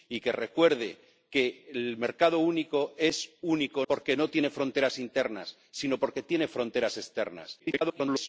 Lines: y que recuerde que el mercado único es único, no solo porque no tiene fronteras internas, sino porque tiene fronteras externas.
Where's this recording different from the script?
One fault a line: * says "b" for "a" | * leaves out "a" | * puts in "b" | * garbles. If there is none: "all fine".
* leaves out "no solo"
* garbles